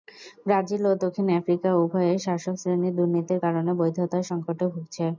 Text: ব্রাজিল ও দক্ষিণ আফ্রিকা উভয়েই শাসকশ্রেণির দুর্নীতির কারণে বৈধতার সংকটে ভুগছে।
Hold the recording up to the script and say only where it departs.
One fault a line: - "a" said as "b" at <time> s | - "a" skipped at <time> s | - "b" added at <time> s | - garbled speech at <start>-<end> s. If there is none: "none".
none